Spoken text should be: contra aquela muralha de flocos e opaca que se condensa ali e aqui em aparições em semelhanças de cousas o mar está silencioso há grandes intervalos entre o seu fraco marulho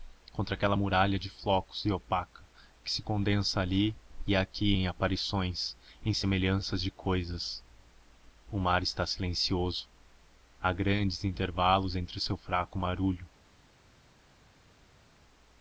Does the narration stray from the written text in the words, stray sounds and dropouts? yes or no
no